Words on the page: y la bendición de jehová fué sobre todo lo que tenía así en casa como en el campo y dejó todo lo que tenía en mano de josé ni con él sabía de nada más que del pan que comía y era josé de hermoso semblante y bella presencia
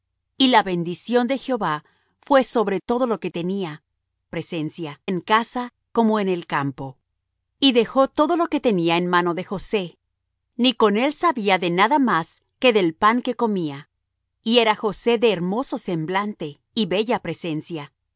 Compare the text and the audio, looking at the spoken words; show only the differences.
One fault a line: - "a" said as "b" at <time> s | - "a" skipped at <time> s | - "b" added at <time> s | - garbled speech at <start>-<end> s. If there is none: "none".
- "así" said as "presencia" at 4.3 s